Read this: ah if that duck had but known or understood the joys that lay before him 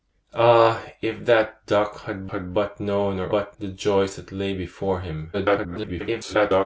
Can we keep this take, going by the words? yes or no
no